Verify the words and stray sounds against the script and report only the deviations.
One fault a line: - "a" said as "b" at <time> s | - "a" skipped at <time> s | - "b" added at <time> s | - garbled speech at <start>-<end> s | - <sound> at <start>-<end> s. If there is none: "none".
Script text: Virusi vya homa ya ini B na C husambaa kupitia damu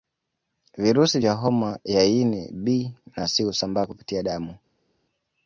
none